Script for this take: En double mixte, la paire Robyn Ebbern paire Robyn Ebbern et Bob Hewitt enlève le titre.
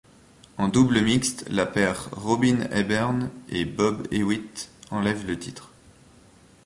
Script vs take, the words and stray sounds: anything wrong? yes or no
yes